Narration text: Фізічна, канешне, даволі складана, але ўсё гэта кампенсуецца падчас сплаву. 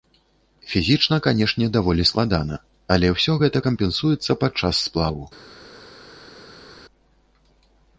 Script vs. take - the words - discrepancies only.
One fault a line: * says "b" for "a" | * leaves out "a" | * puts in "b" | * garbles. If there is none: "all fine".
all fine